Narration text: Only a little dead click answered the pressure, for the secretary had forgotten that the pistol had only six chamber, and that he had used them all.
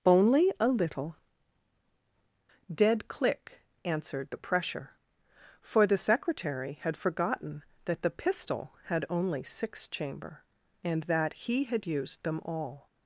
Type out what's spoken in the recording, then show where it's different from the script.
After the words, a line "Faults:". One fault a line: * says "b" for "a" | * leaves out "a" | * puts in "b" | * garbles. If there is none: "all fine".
Only a little dead click answered the pressure, for the secretary had forgotten that the pistol had only six chamber, and that he had used them all.
Faults:
all fine